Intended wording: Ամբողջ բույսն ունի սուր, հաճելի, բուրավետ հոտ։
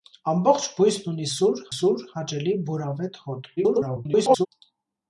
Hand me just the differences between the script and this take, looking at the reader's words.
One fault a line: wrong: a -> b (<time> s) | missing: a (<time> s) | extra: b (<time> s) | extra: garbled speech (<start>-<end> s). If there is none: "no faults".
extra: սուր (1.7 s)
extra: garbled speech (3.6-4.5 s)